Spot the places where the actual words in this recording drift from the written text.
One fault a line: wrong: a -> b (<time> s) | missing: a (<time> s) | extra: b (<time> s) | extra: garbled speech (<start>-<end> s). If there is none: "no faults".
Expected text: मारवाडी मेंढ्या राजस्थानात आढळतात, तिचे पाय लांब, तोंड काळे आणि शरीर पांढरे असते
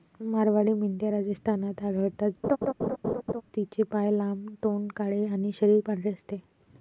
no faults